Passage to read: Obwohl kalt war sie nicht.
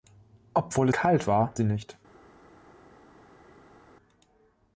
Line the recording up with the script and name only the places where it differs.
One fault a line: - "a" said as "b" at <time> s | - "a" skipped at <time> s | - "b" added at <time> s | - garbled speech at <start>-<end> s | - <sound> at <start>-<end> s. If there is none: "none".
none